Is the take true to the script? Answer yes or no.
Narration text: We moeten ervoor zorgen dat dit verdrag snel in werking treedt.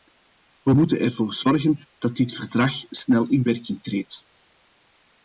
yes